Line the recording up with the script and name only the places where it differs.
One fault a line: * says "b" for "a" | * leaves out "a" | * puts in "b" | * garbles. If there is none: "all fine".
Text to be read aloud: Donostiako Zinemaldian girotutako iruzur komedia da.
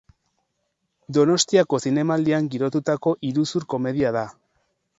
all fine